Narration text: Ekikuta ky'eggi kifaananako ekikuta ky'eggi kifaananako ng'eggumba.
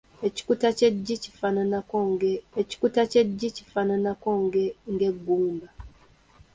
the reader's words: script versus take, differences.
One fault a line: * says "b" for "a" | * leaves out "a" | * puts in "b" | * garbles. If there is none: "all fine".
all fine